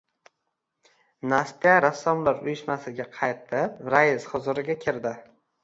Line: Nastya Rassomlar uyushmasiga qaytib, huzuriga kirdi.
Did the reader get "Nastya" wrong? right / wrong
right